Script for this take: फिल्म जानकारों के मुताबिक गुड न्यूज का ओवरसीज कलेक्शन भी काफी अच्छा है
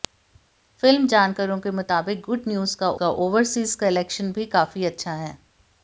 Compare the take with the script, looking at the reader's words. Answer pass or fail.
fail